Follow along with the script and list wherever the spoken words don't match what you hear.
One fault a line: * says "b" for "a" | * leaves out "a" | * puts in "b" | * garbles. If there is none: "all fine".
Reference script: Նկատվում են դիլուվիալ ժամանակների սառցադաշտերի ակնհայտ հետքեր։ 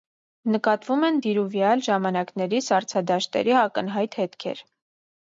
all fine